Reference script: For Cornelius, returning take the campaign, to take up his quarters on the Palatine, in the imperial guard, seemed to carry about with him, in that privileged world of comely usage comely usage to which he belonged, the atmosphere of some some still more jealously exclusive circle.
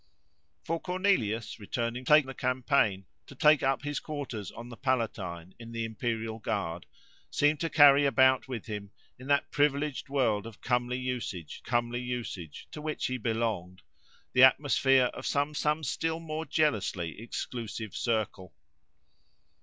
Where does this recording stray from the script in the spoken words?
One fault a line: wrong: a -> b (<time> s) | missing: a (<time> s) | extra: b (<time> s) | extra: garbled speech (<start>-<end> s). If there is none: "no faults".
no faults